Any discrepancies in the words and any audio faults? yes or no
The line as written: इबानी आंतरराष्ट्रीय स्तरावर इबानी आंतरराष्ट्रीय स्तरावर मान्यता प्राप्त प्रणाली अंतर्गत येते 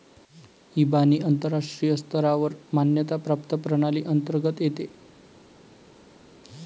yes